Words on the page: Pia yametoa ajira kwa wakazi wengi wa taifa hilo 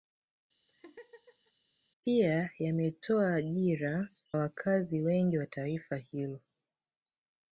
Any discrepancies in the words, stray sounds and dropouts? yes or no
yes